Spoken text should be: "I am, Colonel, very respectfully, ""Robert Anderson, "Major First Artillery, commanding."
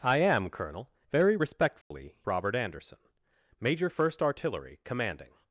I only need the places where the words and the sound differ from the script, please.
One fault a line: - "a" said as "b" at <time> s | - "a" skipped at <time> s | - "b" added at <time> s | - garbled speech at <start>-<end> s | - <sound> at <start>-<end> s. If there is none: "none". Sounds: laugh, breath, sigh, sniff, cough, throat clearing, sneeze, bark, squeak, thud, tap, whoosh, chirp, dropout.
- dropout at 1.8-1.9 s